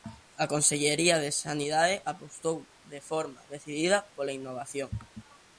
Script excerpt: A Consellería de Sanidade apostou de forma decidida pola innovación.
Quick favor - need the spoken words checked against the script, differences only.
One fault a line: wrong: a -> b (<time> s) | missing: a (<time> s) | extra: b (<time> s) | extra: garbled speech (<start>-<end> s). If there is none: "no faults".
no faults